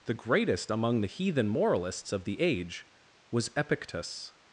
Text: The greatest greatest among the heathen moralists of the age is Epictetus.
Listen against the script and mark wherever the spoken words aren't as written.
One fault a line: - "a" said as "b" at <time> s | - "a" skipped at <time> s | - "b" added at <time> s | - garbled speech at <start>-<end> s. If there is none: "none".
- "greatest" skipped at 0.7 s
- "is" said as "was" at 3.3 s